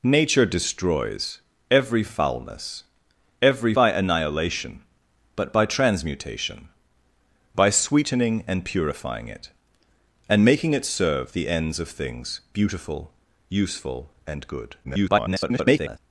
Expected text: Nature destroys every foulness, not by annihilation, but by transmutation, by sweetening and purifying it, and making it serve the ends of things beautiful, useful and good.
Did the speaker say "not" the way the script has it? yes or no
no